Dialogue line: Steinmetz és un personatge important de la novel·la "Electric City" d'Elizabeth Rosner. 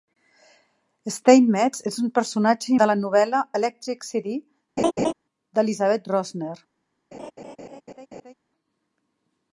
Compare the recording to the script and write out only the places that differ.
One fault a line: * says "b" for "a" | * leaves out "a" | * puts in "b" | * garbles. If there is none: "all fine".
* leaves out "important"